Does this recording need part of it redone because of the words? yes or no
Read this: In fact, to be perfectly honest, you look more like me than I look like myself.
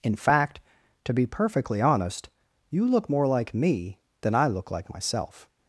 no